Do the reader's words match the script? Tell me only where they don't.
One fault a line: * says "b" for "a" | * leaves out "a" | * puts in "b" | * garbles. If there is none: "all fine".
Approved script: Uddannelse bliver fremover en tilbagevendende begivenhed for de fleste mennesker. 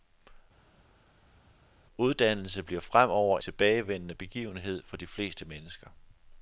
* leaves out "en"